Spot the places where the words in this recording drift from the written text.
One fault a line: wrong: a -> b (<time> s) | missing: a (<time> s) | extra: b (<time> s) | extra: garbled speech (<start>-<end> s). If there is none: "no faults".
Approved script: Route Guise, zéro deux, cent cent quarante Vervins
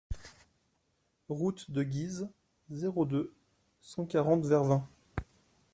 extra: de (1.7 s)
missing: cent (4.1 s)